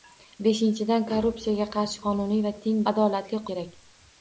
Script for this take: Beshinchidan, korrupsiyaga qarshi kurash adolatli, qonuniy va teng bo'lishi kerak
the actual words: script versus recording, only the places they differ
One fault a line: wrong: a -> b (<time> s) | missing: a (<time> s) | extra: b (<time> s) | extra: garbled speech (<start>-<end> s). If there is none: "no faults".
missing: kurash adolatli (2.0 s)
wrong: bo'lishi -> adolatli (2.9 s)